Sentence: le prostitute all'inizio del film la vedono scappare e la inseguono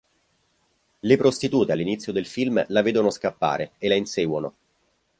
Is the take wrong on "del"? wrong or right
right